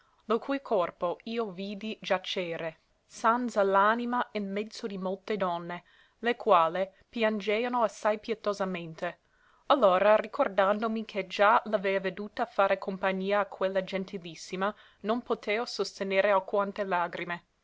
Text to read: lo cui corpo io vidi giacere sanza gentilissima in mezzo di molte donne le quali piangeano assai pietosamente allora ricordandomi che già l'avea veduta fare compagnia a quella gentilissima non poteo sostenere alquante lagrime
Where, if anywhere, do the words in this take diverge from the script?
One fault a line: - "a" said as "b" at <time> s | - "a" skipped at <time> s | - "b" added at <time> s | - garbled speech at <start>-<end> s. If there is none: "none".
- "gentilissima" said as "l'anima" at 3.6 s